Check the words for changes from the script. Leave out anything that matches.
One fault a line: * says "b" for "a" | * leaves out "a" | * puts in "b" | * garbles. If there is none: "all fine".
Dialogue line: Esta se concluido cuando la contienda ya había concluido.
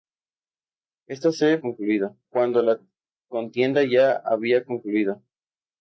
all fine